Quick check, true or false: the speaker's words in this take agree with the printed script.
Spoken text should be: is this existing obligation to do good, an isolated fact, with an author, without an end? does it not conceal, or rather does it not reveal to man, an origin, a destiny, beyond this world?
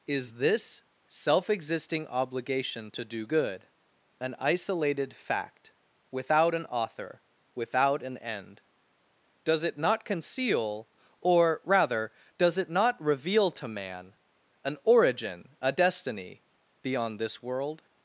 false